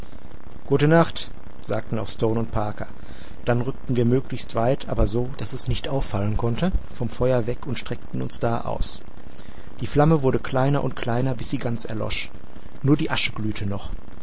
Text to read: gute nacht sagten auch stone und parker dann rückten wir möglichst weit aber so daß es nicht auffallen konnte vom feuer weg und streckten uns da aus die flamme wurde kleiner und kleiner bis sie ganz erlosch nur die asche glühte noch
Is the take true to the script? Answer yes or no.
yes